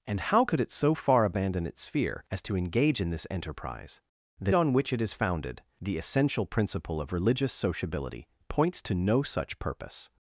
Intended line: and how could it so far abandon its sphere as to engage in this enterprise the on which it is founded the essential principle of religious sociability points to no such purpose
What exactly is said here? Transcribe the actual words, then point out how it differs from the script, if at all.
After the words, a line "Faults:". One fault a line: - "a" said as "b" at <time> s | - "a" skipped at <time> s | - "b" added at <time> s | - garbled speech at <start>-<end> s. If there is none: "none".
and how could it so far abandon its sphere as to engage in this enterprise the on which it is founded the essential principle of religious sociability points to no such purpose
Faults:
none